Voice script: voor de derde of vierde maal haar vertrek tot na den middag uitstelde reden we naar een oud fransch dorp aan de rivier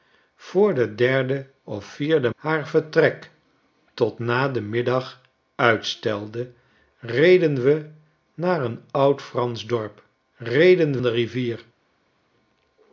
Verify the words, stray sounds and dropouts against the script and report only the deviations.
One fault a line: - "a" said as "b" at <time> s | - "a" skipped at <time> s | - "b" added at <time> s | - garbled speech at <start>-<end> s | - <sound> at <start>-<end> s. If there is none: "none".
- "maal" skipped at 2.3 s
- "aan" said as "reden" at 10.4 s